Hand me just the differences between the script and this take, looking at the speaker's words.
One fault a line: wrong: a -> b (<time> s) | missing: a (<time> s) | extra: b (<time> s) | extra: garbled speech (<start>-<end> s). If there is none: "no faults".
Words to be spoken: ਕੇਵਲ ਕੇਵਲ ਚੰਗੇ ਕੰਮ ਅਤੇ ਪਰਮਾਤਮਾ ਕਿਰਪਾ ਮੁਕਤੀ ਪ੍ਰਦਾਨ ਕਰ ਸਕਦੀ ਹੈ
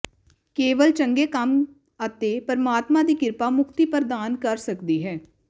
missing: ਕੇਵਲ (0.9 s)
extra: ਦੀ (3.0 s)